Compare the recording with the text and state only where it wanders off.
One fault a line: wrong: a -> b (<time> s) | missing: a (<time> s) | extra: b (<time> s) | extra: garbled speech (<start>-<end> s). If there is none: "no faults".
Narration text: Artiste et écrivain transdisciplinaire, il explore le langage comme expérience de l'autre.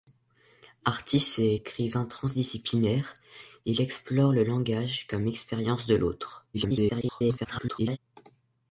extra: garbled speech (6.5-8.0 s)